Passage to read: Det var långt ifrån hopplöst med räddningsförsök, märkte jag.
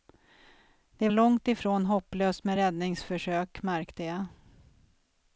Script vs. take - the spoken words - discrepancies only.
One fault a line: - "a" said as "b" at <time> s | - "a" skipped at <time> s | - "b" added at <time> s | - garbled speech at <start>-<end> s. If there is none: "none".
- "var" skipped at 1.1 s